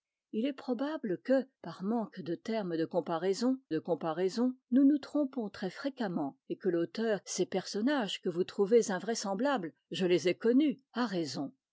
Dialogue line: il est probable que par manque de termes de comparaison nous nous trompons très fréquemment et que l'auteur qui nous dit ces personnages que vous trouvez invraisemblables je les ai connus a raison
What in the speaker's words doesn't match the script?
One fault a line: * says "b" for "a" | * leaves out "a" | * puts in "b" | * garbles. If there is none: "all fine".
* puts in "de comparaison"
* leaves out "qui nous dit"